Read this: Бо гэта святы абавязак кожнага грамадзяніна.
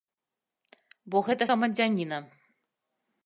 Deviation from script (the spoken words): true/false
true